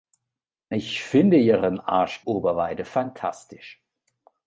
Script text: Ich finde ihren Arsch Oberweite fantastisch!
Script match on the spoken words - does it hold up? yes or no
yes